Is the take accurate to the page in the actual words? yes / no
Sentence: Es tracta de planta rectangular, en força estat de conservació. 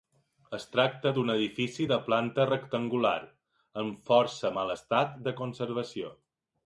no